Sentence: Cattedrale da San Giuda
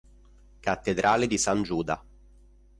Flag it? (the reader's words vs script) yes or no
yes